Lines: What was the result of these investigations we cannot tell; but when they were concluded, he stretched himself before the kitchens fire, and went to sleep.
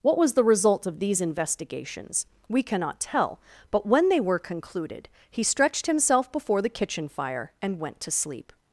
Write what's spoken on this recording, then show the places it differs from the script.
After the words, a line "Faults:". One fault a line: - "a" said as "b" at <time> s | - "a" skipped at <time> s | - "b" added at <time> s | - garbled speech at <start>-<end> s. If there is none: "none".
What was the result of these investigations we cannot tell; but when they were concluded, he stretched himself before the kitchen fire, and went to sleep.
Faults:
- "kitchens" said as "kitchen" at 6.7 s